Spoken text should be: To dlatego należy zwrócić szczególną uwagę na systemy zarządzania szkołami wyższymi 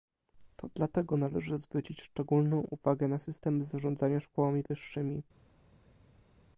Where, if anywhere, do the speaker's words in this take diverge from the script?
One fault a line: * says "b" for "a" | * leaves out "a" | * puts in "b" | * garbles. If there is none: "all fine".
all fine